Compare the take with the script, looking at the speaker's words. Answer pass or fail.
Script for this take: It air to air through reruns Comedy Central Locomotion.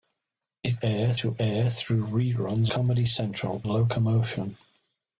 pass